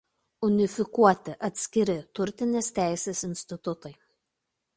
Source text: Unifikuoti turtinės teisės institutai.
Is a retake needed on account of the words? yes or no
yes